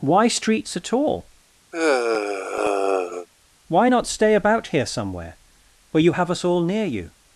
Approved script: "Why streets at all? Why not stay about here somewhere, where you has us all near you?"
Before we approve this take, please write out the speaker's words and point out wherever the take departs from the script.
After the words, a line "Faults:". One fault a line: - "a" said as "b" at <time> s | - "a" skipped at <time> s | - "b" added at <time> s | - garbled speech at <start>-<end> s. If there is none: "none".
"Why streets at all? Why not stay about here somewhere, where you have us all near you?"
Faults:
- "has" said as "have" at 6.1 s